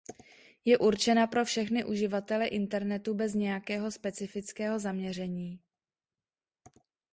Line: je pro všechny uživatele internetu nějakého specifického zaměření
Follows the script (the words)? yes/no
no